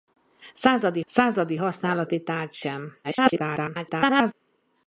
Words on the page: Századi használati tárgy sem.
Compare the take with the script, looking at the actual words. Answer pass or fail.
fail